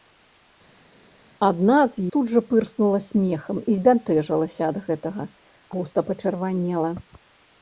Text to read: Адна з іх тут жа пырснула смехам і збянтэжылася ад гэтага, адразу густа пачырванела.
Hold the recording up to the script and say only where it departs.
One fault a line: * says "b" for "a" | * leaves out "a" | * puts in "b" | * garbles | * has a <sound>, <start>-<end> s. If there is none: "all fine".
* leaves out "іх"
* leaves out "адразу"